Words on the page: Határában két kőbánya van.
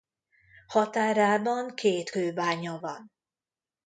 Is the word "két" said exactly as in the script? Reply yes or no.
yes